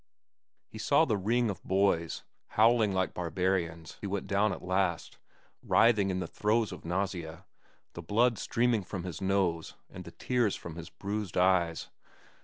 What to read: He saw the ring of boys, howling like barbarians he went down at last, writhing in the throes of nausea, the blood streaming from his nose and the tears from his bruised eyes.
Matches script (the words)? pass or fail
pass